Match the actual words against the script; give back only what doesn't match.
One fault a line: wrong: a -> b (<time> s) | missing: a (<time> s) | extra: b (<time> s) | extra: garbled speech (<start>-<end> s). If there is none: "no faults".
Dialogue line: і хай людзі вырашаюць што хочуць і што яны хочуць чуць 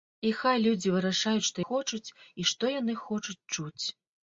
no faults